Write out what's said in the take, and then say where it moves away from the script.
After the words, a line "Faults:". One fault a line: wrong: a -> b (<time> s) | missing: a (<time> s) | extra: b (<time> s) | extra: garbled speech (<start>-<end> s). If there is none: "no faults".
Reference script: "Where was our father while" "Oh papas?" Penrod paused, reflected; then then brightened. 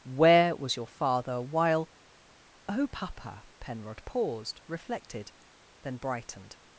"Where was your father while" "Oh papa?" Penrod paused, reflected; then brightened.
Faults:
wrong: our -> your (0.8 s)
wrong: papas -> papa (2.9 s)
missing: then (6.0 s)